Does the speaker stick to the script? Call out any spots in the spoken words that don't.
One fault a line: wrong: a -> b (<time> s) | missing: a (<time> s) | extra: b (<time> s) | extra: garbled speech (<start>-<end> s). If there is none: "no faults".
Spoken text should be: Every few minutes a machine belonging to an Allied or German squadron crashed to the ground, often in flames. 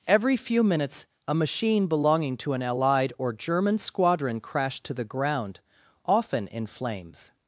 no faults